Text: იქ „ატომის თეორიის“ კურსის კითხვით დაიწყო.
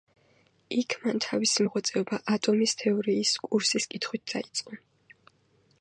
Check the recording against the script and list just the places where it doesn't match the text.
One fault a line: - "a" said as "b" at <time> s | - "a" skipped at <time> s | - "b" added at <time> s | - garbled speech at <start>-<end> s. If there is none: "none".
- "მან თავისი მოღვაწეობა" added at 1.0 s